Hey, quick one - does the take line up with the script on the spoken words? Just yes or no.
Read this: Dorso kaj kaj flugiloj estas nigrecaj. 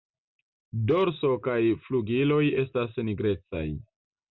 no